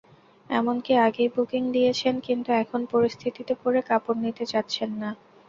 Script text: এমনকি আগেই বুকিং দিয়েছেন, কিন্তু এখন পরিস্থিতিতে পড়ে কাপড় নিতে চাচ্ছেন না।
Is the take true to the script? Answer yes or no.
yes